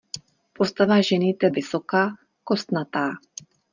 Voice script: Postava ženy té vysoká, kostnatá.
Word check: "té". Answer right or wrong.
right